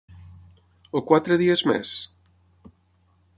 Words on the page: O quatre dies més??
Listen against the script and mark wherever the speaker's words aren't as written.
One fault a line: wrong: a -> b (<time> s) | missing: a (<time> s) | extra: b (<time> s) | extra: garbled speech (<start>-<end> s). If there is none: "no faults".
no faults